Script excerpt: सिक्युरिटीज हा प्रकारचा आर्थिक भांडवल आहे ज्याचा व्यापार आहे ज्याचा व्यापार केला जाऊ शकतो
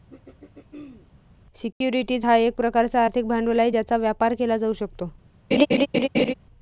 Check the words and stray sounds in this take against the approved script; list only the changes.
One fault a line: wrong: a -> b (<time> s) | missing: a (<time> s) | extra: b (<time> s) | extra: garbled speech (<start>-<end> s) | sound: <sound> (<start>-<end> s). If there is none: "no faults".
sound: throat clearing (0.1-1.1 s)
extra: एक (2.4 s)
missing: आहे ज्याचा व्यापार (4.3 s)
sound: laugh (5.5-6.3 s)